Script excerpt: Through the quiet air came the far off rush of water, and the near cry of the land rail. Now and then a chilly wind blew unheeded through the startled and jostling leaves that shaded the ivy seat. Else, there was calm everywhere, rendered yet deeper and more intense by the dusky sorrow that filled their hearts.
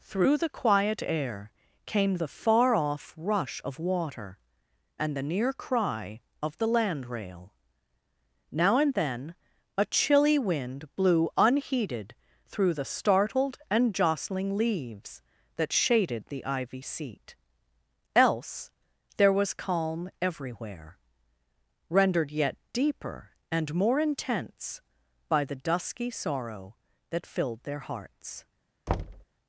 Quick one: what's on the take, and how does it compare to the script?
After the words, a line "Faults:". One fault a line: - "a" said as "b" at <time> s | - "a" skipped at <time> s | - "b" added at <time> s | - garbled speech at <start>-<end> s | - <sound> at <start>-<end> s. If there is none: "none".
Through the quiet air came the far off rush of water, and the near cry of the land rail. Now and then a chilly wind blew unheeded through the startled and jostling leaves that shaded the ivy seat. Else, there was calm everywhere, rendered yet deeper and more intense by the dusky sorrow that filled their hearts.
Faults:
- thud at 28.9-29.2 s